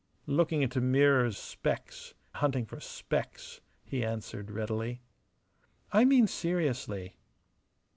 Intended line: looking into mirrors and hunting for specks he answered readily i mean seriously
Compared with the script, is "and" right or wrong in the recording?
wrong